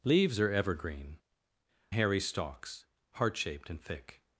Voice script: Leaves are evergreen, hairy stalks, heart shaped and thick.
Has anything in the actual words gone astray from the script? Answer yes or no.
no